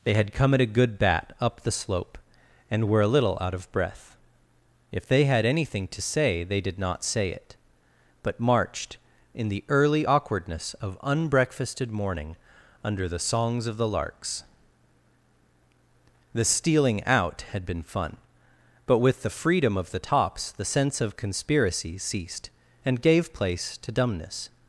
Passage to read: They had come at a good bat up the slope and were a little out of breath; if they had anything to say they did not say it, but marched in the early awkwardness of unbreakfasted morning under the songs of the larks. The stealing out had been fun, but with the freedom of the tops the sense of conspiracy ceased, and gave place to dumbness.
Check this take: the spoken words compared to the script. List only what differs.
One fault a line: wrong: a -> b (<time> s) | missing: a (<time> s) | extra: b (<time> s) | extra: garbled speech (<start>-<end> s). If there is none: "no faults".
no faults